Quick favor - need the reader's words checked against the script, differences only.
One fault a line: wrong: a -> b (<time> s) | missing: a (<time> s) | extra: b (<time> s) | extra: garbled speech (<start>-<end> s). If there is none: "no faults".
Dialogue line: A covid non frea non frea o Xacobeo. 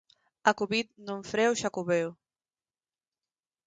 missing: non frea (1.5 s)